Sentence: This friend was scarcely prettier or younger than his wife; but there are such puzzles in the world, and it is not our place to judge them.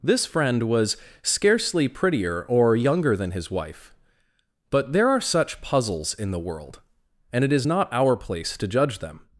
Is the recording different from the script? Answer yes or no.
no